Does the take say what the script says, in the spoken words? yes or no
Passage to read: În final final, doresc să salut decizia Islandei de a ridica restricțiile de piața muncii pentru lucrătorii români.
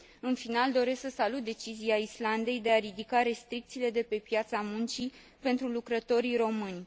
no